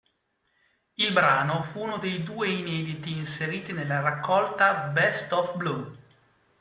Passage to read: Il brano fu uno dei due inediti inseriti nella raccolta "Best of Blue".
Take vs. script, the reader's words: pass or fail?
pass